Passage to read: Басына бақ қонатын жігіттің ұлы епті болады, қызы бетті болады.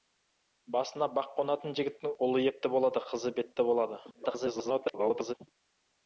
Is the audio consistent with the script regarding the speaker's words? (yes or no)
no